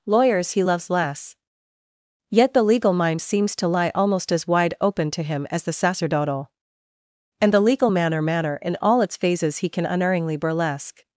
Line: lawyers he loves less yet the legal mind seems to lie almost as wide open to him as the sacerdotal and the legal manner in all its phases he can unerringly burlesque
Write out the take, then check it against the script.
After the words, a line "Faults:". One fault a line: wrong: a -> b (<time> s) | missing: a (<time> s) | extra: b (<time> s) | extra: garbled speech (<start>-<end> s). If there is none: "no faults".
lawyers he loves less yet the legal mind seems to lie almost as wide open to him as the sacerdotal and the legal manner manner in all its phases he can unerringly burlesque
Faults:
extra: manner (8.2 s)